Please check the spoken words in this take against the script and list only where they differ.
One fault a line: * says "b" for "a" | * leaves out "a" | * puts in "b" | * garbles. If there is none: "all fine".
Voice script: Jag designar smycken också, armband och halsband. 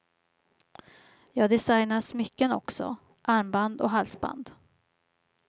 all fine